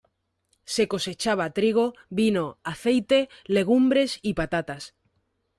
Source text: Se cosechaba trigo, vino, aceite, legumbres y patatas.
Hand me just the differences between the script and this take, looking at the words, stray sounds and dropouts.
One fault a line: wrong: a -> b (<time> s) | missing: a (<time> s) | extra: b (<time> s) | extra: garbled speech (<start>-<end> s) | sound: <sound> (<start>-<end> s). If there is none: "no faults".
no faults